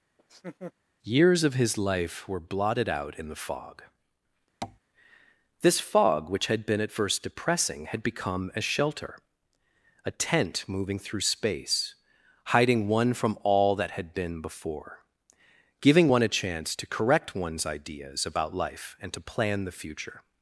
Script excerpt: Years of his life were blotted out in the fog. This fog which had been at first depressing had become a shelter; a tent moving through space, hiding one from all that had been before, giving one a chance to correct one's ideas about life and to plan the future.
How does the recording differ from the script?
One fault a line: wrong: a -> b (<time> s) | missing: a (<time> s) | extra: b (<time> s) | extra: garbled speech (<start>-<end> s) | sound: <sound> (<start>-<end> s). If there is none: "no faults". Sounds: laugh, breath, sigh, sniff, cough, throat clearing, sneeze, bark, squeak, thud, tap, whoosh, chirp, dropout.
sound: laugh (0.2-0.7 s)
sound: tap (4.6-4.8 s)